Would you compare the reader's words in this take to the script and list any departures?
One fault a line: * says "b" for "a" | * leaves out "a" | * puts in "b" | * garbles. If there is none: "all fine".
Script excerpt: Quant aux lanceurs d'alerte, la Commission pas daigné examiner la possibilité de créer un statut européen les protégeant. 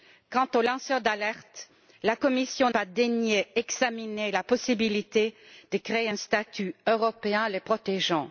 all fine